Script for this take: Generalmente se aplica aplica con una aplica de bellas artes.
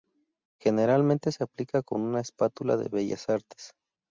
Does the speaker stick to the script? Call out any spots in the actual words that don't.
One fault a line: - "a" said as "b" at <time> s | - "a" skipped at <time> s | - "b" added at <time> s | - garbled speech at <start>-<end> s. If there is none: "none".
- "aplica" skipped at 1.8 s
- "aplica" said as "espátula" at 2.2 s